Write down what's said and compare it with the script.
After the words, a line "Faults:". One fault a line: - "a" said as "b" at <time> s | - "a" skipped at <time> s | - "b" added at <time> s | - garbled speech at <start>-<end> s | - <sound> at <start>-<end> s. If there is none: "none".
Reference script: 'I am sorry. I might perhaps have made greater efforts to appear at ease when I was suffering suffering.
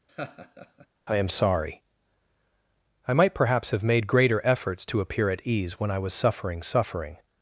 'I am sorry. I might perhaps have made greater efforts to appear at ease when I was suffering suffering.
Faults:
- laugh at 0.1-0.9 s